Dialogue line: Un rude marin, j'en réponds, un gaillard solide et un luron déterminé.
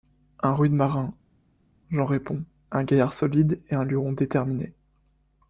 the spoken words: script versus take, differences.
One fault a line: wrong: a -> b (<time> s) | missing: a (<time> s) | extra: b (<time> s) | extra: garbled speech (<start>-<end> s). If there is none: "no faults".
no faults